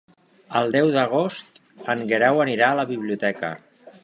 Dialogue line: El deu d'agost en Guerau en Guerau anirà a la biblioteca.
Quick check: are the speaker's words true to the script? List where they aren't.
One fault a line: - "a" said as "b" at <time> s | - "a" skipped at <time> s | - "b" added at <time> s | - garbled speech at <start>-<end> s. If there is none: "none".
- "en Guerau" skipped at 2.4 s